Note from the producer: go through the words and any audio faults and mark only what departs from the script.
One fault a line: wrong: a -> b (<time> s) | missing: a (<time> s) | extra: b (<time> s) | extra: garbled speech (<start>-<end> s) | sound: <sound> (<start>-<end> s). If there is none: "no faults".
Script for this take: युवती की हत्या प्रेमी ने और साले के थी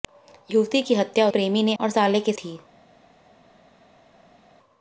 no faults